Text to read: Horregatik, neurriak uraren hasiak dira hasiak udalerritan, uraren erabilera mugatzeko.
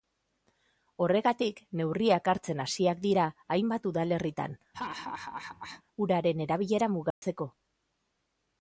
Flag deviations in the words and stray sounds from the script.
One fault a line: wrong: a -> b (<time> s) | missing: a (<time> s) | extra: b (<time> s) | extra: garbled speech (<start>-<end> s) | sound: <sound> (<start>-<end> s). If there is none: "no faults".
wrong: uraren -> hartzen (2.3 s)
wrong: hasiak -> hainbat (3.5 s)
sound: laugh (4.7-5.8 s)
sound: dropout (7.1-7.2 s)